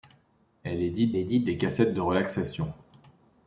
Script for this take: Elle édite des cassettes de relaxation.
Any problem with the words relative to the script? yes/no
yes